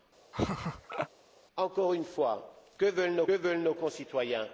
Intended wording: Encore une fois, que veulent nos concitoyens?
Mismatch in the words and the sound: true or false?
true